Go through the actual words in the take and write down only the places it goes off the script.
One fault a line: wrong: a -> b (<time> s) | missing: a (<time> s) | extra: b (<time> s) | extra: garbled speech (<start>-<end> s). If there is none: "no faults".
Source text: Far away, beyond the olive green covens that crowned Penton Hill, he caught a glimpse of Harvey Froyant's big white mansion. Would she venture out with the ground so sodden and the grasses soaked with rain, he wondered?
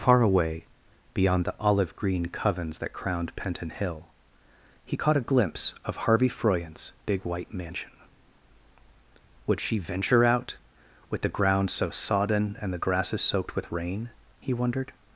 no faults